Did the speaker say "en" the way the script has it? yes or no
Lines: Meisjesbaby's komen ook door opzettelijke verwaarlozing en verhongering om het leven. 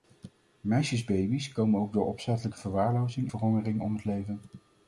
no